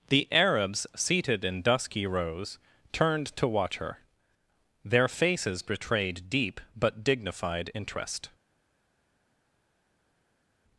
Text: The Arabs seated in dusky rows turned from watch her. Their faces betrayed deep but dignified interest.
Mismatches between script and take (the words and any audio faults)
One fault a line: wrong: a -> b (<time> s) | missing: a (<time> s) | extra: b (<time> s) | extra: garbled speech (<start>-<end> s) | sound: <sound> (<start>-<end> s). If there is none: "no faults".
wrong: from -> to (3.4 s)